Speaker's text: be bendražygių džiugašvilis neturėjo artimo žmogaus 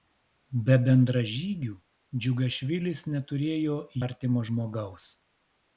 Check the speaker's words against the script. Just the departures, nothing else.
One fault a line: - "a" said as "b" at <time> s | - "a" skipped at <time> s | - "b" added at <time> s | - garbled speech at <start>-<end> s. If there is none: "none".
none